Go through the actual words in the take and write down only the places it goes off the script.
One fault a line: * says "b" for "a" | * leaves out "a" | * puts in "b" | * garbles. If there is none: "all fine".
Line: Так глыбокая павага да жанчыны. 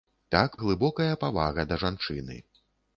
all fine